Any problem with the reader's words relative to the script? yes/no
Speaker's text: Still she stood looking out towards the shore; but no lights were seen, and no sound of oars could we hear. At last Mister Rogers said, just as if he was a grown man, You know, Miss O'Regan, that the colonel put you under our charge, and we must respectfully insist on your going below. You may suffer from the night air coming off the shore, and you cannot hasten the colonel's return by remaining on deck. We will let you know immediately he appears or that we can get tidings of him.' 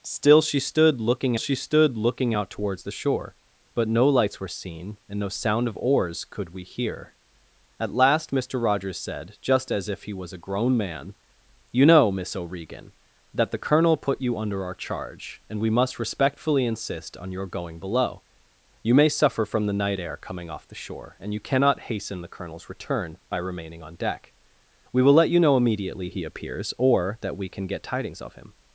yes